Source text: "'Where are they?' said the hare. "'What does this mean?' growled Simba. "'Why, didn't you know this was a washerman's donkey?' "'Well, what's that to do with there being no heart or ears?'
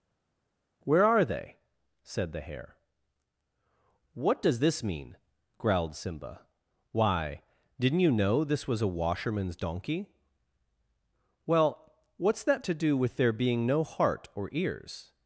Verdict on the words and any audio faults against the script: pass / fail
pass